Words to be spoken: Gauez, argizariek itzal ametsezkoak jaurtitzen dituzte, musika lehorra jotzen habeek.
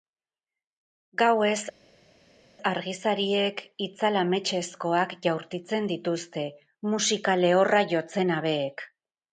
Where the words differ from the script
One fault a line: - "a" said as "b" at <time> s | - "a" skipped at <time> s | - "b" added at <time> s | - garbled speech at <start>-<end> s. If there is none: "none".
none